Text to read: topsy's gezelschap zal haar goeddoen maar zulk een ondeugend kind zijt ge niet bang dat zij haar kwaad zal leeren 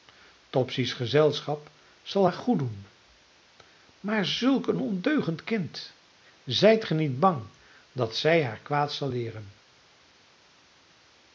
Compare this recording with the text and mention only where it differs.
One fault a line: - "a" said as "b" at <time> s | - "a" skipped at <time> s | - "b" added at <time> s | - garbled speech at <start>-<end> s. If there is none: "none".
none